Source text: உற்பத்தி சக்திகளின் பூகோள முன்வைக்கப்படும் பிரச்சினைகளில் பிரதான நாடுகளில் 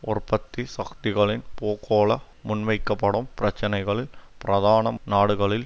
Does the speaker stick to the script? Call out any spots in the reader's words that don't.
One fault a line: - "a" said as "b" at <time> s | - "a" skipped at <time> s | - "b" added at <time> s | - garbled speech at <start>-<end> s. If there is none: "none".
none